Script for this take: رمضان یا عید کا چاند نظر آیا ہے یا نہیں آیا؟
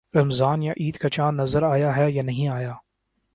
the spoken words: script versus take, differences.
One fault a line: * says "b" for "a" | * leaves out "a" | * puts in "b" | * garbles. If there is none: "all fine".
all fine